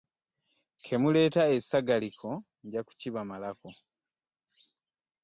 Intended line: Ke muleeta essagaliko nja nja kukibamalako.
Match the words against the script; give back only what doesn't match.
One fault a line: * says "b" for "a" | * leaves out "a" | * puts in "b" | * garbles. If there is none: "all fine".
* leaves out "nja"